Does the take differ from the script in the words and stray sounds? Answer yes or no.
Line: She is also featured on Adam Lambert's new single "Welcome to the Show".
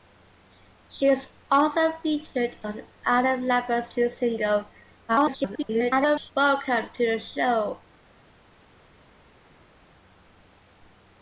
yes